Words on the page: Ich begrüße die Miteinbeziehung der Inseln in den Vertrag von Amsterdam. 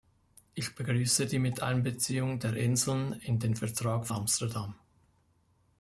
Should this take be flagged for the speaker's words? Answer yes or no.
yes